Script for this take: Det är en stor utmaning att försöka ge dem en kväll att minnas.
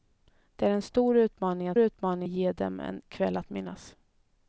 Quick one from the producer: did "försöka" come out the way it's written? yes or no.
no